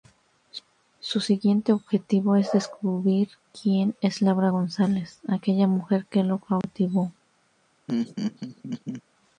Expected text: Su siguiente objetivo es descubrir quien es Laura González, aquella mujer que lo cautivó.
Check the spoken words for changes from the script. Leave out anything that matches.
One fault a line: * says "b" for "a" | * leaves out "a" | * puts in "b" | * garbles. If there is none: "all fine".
all fine